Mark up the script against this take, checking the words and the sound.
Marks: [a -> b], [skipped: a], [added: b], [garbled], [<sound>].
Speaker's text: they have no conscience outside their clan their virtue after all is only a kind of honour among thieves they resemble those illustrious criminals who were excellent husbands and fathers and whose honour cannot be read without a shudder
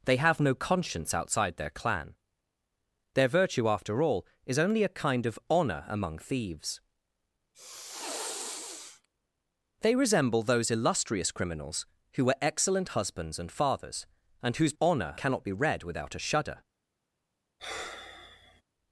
they have no conscience outside their clan their virtue after all is only a kind of honour among thieves [sniff] they resemble those illustrious criminals who were excellent husbands and fathers and whose honour cannot be read without a shudder [sigh]